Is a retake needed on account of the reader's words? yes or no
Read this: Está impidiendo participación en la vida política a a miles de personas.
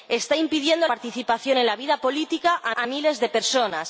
no